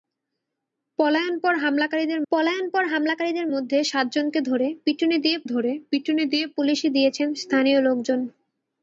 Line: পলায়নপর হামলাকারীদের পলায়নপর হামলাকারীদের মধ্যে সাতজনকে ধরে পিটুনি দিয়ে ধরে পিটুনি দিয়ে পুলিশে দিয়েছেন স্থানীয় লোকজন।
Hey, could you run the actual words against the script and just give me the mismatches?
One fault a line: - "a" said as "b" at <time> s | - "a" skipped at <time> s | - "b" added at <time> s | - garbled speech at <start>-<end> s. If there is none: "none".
none